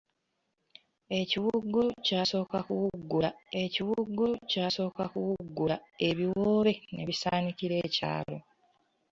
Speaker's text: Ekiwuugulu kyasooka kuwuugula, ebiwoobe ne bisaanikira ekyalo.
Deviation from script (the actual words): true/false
true